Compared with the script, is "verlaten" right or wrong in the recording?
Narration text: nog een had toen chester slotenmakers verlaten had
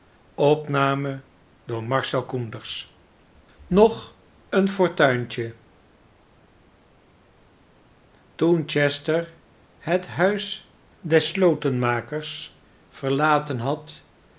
right